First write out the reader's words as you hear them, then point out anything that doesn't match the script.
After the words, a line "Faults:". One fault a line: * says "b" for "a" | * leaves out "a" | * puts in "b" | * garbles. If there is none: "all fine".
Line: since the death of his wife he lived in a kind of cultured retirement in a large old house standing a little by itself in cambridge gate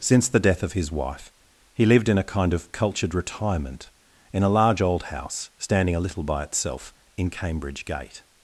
since the death of his wife he lived in a kind of cultured retirement in a large old house standing a little by itself in cambridge gate
Faults:
all fine